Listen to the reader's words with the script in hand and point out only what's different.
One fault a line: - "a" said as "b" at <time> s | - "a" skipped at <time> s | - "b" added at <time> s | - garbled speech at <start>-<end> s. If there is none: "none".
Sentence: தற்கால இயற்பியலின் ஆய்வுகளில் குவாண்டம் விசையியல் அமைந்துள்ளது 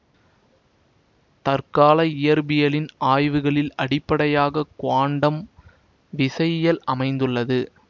- "அடிப்படையாக" added at 3.8 s